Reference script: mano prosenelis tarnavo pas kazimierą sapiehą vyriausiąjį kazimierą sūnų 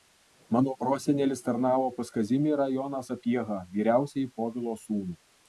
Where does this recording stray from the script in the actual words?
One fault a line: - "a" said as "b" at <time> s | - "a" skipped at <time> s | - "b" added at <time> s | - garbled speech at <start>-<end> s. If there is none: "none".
- "joną" added at 2.8 s
- "kazimierą" said as "povilo" at 4.4 s